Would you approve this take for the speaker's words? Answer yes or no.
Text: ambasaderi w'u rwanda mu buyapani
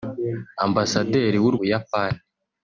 no